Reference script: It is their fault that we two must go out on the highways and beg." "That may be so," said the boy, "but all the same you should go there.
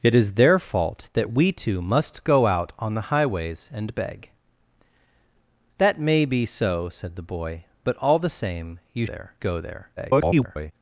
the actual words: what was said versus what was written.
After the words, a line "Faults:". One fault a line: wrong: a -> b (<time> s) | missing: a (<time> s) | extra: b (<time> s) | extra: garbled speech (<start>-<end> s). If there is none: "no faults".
It is their fault that we two must go out on the highways and beg." "That may be so," said the boy, "but all the same you there go there. [garbled]
Faults:
wrong: should -> there (9.0 s)
extra: garbled speech (10.0-10.7 s)